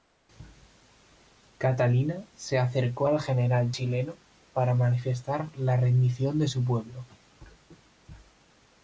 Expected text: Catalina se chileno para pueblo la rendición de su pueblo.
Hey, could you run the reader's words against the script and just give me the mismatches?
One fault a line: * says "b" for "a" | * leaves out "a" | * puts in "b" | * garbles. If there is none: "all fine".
* puts in "acercó al general"
* says "manifestar" for "pueblo"